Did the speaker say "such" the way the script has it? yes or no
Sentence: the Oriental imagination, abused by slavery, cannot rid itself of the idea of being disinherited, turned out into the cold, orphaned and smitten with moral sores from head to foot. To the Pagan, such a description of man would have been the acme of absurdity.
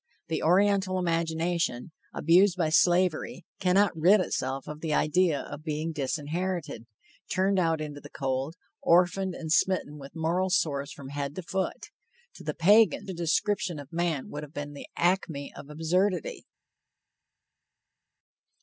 no